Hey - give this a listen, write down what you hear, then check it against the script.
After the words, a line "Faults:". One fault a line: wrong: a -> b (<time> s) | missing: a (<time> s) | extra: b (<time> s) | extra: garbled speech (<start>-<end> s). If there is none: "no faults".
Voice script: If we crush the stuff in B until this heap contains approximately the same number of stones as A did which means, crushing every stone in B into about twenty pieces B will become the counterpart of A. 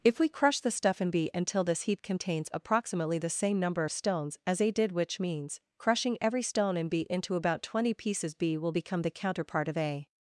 If we crush the stuff in B until this heap contains approximately the same number of stones as A did which means, crushing every stone in B into about twenty pieces B will become the counterpart of A.
Faults:
no faults